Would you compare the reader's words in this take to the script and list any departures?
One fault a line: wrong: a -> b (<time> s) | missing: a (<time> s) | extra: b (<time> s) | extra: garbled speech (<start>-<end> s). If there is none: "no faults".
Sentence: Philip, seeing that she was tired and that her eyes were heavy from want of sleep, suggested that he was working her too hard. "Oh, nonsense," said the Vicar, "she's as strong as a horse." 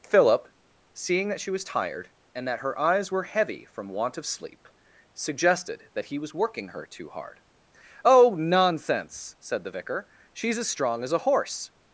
no faults